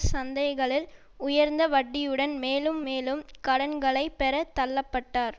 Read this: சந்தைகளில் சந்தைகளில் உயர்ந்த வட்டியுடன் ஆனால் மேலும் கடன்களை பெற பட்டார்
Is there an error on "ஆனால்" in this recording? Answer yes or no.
yes